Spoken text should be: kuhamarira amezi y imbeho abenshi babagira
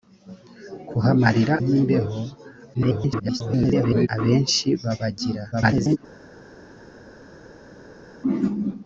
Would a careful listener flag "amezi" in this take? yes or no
yes